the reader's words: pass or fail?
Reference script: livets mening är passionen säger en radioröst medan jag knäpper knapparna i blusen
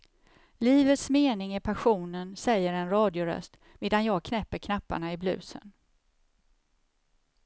pass